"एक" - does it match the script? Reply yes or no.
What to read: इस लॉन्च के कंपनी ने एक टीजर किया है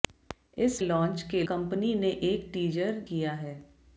yes